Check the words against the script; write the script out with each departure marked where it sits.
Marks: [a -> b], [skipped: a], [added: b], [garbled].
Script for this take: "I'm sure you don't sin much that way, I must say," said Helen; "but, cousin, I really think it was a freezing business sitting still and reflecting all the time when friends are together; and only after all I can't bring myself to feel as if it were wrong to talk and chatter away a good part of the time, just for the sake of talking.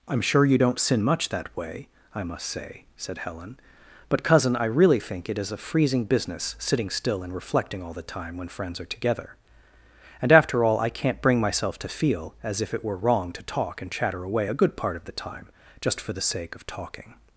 "I'm sure you don't sin much that way, I must say," said Helen; "but, cousin, I really think it [was -> is] a freezing business sitting still and reflecting all the time when friends are together; and [skipped: only] after all I can't bring myself to feel as if it were wrong to talk and chatter away a good part of the time, just for the sake of talking.